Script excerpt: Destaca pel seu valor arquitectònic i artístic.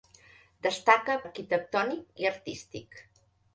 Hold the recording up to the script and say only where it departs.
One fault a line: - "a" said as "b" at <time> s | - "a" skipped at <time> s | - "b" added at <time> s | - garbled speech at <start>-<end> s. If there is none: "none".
- "pel seu valor" skipped at 1.2 s